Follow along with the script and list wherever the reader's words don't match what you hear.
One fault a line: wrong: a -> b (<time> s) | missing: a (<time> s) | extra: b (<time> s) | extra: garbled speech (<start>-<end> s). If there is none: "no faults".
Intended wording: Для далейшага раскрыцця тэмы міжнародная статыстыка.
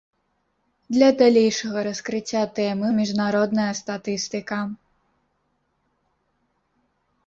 no faults